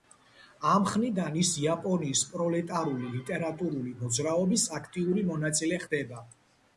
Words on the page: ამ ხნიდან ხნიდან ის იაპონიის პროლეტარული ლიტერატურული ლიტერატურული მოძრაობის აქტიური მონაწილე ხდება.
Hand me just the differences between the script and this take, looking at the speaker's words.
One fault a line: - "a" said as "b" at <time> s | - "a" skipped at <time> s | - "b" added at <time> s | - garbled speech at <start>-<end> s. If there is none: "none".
- "ხნიდან" skipped at 1.4 s
- "ლიტერატურული" skipped at 3.9 s